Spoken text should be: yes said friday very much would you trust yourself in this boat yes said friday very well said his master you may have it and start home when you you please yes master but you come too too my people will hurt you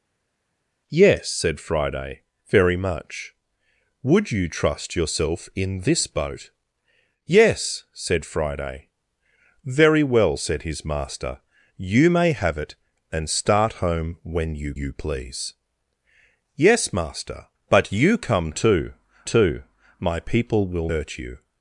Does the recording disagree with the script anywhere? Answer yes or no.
no